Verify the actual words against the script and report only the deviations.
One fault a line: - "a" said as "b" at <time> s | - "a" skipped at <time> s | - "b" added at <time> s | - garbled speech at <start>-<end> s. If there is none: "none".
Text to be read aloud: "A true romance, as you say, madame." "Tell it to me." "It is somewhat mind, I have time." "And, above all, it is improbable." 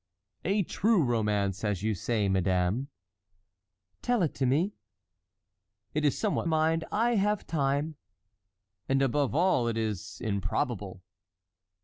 none